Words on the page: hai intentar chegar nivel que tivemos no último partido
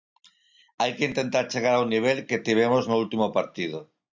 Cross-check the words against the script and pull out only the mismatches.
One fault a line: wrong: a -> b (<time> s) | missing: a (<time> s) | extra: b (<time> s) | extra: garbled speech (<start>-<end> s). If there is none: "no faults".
extra: que (1.0 s)
extra: ao (1.8 s)